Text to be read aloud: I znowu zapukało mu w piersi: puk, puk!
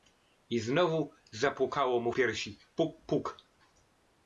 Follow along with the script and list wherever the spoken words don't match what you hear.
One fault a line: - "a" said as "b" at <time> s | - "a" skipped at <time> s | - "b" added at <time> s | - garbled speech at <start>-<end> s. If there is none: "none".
- "w" skipped at 2.1 s